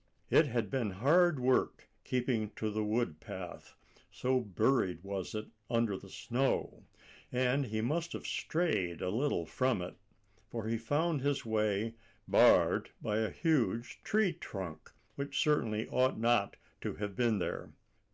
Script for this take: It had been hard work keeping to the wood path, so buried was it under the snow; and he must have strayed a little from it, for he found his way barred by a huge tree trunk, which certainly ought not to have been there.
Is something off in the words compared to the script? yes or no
no